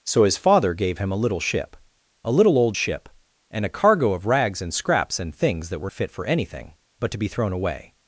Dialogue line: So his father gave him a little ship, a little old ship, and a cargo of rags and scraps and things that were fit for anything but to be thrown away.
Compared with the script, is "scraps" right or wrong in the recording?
right